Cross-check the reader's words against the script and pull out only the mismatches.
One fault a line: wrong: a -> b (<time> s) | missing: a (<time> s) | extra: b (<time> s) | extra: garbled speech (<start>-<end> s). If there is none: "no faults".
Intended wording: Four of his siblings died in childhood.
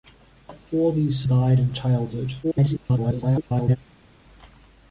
missing: siblings (1.2 s)
extra: garbled speech (2.4-3.8 s)